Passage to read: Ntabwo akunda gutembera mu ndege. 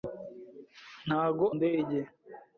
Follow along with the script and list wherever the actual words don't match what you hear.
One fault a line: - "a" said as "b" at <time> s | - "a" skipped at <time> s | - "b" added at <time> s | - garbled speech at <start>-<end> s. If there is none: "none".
- "akunda gutembera mu" skipped at 1.4 s